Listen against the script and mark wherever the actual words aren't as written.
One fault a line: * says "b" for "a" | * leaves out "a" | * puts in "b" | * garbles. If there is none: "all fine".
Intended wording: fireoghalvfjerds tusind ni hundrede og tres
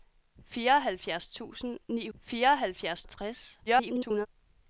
* says "fireoghalvfjerds" for "hundrede"
* garbles